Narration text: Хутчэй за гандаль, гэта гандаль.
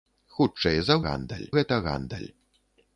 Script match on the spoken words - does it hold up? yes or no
yes